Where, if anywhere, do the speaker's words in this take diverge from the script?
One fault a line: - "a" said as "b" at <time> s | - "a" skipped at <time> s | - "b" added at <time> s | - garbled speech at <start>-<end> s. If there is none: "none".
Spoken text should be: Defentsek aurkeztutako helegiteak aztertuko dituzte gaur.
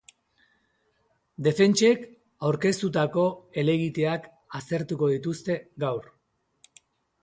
none